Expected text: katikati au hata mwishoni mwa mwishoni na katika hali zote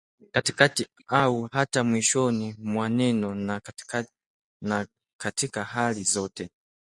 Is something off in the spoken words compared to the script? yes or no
yes